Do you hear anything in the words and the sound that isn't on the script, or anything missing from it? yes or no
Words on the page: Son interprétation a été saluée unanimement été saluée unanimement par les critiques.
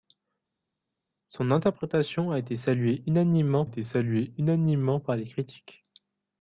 no